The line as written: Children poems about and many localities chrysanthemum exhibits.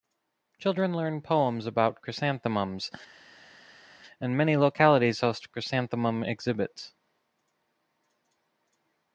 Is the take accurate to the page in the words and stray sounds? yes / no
no